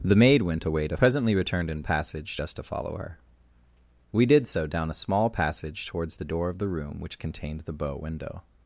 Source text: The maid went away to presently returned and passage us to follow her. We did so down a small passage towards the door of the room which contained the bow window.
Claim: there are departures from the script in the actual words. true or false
false